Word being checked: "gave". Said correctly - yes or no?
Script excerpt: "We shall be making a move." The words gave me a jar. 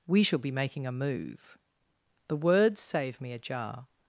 no